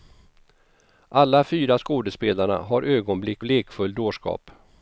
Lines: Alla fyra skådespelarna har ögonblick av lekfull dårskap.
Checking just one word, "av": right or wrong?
wrong